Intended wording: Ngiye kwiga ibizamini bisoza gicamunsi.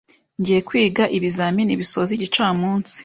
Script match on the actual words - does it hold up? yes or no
yes